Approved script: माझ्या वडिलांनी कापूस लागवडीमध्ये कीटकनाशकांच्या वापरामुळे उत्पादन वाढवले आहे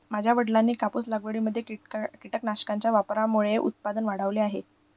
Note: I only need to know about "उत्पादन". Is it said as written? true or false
true